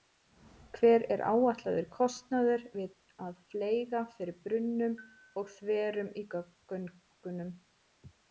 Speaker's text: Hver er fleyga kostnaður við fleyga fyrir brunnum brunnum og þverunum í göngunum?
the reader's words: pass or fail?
fail